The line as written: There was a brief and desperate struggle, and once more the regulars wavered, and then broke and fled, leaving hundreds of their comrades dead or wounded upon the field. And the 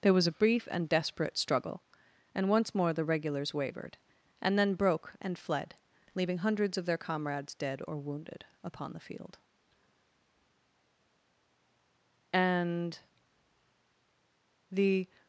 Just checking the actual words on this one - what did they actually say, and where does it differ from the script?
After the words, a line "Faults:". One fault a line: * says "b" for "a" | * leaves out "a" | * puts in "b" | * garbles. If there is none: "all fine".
There was a brief and desperate struggle, and once more the regulars wavered, and then broke and fled, leaving hundreds of their comrades dead or wounded upon the field. And the
Faults:
all fine